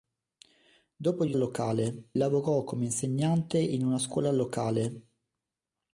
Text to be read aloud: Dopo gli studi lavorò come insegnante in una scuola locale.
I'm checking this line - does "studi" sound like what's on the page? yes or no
no